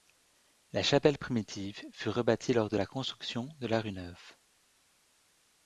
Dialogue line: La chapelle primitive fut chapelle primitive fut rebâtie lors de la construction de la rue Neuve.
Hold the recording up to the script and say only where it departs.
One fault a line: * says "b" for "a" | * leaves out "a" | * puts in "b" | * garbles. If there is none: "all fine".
* leaves out "chapelle primitive fut"